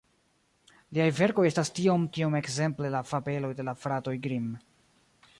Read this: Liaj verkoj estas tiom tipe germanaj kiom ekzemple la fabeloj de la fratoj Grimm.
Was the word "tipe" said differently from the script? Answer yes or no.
yes